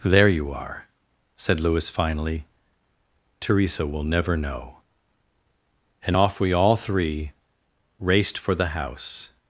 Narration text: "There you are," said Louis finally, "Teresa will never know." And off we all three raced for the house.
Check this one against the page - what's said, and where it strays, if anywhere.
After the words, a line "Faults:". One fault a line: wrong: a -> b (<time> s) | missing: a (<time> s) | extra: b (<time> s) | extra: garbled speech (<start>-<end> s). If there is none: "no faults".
"There you are," said Louis finally, "Teresa will never know." And off we all three raced for the house.
Faults:
no faults